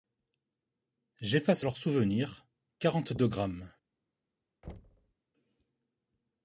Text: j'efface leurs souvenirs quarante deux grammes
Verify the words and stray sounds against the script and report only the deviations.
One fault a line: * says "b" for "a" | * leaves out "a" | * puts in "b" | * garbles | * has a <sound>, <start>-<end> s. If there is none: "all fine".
* has a thud, 4.6-5.1 s